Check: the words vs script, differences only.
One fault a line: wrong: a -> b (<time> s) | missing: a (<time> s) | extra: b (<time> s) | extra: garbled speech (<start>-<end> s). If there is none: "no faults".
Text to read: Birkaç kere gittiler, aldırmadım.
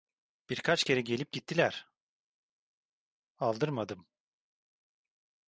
extra: gelip (1.0 s)